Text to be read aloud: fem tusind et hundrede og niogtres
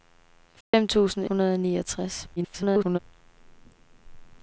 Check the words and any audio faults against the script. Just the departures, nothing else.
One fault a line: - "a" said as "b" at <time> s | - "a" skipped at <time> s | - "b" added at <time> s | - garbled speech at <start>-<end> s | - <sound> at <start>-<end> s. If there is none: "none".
- dropout at 0.6-0.7 s
- "et" skipped at 1.2 s
- garbled speech at 2.4-3.0 s